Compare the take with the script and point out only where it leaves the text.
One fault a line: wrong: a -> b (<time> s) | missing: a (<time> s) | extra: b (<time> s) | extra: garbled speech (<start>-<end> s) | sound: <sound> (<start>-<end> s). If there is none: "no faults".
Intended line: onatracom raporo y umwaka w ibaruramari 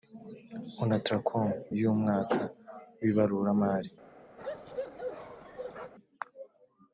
missing: raporo (1.5 s)
sound: bark (4.4-5.9 s)